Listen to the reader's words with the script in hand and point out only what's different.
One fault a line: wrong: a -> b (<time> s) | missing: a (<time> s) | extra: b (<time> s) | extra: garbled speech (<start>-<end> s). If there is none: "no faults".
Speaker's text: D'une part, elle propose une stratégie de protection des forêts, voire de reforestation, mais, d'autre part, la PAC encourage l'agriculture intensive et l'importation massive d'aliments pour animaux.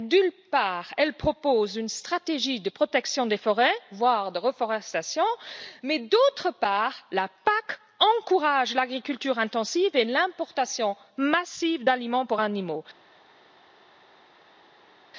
no faults